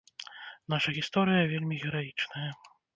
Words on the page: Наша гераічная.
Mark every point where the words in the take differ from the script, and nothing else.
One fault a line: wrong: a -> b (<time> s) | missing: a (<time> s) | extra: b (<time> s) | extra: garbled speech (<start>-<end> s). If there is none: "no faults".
extra: гісторыя вельмі (1.0 s)